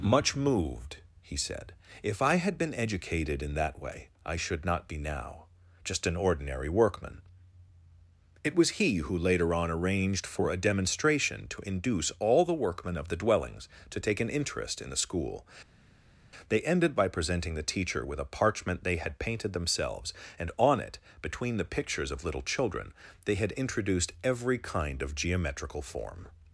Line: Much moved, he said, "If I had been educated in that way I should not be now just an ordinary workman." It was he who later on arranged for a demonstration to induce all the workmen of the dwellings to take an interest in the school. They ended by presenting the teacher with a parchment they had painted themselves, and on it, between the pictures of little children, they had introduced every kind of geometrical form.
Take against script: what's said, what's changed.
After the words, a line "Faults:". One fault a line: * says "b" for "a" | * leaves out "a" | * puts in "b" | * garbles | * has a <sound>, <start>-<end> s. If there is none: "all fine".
Much moved, he said, "If I had been educated in that way I should not be now just an ordinary workman." It was he who later on arranged for a demonstration to induce all the workmen of the dwellings to take an interest in the school. They ended by presenting the teacher with a parchment they had painted themselves, and on it, between the pictures of little children, they had introduced every kind of geometrical form.
Faults:
all fine